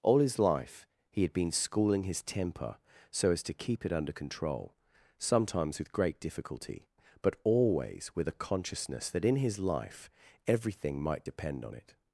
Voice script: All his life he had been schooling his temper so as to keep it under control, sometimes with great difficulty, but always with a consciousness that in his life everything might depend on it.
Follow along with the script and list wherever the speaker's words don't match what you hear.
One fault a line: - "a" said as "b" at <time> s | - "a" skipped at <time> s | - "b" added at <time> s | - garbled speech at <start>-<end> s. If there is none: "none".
none